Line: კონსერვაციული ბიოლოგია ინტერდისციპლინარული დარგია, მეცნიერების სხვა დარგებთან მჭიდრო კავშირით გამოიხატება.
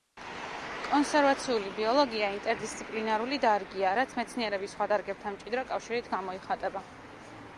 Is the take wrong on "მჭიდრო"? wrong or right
right